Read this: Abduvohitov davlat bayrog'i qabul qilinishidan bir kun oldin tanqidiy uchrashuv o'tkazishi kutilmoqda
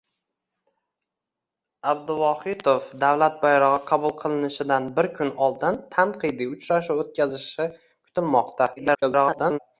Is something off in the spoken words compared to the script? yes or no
yes